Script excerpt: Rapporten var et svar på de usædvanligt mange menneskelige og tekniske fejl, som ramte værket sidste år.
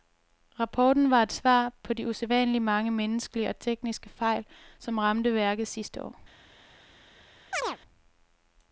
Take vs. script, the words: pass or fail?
pass